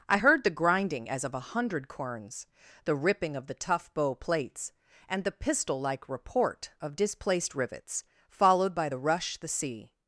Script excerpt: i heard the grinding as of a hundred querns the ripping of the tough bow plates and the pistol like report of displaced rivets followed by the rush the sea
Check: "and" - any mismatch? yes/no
no